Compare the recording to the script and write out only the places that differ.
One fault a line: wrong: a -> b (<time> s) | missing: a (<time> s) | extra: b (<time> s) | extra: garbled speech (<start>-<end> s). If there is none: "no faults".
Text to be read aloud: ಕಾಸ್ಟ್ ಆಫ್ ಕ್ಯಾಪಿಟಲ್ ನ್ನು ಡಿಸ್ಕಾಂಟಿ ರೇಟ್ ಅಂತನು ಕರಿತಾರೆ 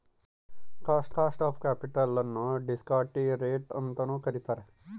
extra: ಕಾಸ್ಟ್ (1.1 s)